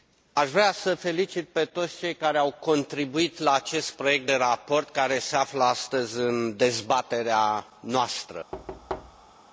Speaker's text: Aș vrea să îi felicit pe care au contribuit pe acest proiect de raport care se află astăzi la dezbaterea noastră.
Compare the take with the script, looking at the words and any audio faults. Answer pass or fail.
fail